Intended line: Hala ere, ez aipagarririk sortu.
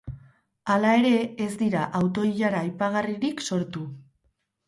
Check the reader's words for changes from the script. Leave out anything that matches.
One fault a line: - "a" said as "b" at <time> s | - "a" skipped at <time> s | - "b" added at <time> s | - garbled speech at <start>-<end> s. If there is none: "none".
- "dira auto ilara" added at 1.6 s